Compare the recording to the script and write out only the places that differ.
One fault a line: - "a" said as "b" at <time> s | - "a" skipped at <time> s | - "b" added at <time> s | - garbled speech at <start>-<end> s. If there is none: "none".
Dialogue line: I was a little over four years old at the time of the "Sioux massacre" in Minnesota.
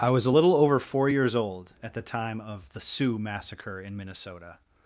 none